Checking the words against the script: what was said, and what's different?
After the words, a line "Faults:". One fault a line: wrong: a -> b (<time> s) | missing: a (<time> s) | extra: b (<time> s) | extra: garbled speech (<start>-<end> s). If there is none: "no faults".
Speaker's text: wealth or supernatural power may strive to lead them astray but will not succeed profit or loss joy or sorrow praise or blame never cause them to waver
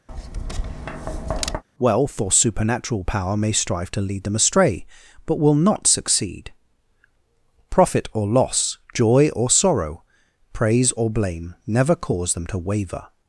wealth or supernatural power may strive to lead them astray but will not succeed profit or loss joy or sorrow praise or blame never cause them to waver
Faults:
no faults